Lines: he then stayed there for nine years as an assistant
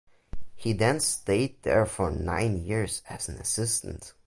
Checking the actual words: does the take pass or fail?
pass